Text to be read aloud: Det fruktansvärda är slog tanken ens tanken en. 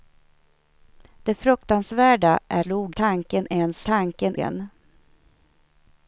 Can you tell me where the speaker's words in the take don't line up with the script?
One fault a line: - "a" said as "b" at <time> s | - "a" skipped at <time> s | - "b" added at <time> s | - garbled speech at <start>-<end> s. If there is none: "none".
none